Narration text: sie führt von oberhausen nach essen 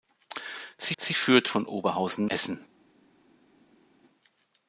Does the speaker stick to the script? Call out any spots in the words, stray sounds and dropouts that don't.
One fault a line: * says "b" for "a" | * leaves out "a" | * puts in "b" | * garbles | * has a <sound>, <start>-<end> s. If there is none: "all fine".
* puts in "sie"
* leaves out "nach"